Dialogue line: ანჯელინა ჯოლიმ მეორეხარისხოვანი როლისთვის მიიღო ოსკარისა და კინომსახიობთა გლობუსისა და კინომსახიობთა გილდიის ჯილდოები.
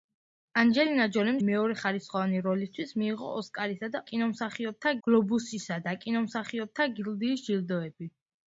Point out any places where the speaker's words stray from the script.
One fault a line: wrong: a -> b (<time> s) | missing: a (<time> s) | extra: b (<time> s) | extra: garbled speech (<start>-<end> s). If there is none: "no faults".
no faults